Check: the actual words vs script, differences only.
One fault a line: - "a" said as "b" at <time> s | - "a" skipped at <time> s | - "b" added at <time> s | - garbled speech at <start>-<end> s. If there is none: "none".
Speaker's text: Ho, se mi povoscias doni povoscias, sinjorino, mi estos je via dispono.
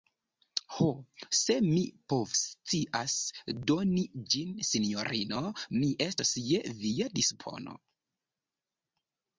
- "povoscias" said as "ĝin" at 4.3 s